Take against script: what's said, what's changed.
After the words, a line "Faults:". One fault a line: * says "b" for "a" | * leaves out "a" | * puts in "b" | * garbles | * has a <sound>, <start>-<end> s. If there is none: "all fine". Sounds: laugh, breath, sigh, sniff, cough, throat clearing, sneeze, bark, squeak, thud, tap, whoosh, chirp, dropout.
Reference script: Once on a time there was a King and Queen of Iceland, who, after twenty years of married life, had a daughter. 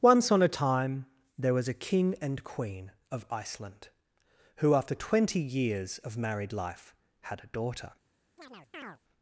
Once on a time there was a King and Queen of Iceland, who, after twenty years of married life, had a daughter.
Faults:
* has a chirp, 8.4-9.0 s